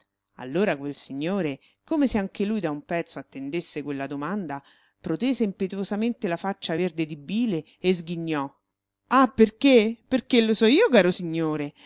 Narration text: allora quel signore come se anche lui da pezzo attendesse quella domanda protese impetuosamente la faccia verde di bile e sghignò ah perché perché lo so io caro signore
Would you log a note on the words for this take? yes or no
yes